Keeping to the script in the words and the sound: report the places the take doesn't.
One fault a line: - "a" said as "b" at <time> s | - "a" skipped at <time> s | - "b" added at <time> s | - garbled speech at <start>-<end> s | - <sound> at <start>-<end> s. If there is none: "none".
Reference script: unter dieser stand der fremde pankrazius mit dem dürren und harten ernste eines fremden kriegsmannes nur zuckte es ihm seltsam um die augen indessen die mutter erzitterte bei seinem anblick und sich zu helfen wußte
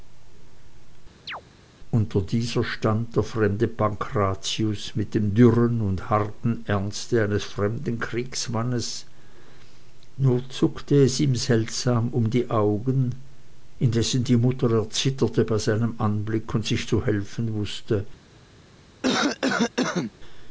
- chirp at 1.3-1.4 s
- cough at 19.0-20.1 s